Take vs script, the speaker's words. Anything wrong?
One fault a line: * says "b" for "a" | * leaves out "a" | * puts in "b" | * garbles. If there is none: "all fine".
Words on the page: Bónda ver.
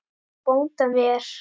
all fine